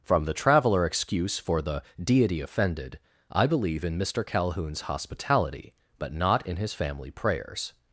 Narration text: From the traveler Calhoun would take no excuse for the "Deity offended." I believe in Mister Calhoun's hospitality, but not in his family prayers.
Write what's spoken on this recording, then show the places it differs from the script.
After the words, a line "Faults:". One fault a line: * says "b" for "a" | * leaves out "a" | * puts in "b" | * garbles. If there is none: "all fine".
From the traveler excuse for the "Deity offended." I believe in Mister Calhoun's hospitality, but not in his family prayers.
Faults:
* leaves out "Calhoun would take no"